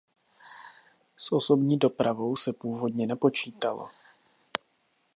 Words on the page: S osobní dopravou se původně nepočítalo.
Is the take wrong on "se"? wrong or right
right